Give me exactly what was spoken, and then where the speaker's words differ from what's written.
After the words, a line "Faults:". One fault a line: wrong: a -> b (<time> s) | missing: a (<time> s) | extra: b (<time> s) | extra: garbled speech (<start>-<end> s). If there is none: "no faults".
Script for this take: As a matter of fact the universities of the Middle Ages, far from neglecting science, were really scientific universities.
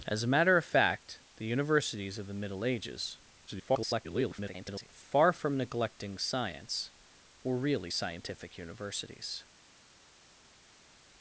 As a matter of fact the universities of the Middle Ages, [garbled] far from neglecting science, were really scientific universities.
Faults:
extra: garbled speech (3.5-4.9 s)